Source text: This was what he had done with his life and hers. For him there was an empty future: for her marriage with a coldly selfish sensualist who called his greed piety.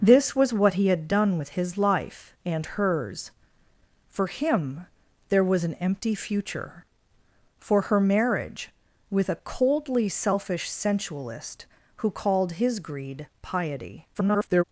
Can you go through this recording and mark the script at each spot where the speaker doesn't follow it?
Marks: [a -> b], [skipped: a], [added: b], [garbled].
This was what he had done with his life and hers. For him there was an empty future: for her marriage with a coldly selfish sensualist who called his greed piety. [garbled]